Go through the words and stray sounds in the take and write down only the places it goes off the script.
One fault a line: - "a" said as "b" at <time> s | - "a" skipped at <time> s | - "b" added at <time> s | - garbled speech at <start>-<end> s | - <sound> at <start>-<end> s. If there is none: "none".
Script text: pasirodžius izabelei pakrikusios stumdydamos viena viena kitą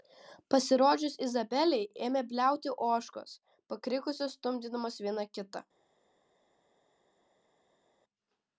- "ėmė bliauti ožkos" added at 2.1 s
- "viena" skipped at 5.3 s